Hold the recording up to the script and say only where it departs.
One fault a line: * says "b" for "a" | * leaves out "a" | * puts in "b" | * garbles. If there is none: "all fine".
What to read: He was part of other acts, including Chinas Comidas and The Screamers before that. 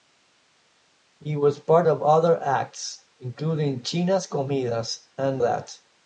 * leaves out "The Screamers before"